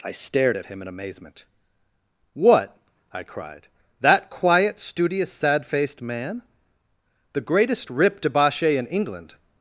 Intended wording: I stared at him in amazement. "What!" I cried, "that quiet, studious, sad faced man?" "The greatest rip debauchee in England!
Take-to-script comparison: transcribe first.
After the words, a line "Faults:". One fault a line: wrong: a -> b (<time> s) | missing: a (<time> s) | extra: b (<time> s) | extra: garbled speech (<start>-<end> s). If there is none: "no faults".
I stared at him in amazement. "What!" I cried, "that quiet, studious, sad faced man?" "The greatest rip debauchee in England!
Faults:
no faults